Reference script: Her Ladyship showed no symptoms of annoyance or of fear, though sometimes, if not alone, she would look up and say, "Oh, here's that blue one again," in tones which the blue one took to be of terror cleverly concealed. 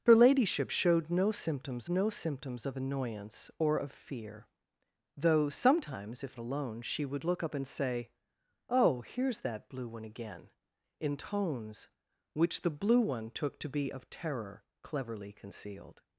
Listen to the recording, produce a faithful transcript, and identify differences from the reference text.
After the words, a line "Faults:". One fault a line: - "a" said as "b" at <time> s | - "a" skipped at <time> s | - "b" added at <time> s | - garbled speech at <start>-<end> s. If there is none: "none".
Her Ladyship showed no symptoms no symptoms of annoyance or of fear, though sometimes, if alone, she would look up and say, "Oh, here's that blue one again," in tones which the blue one took to be of terror cleverly concealed.
Faults:
- "no symptoms" added at 1.9 s
- "not" skipped at 6.4 s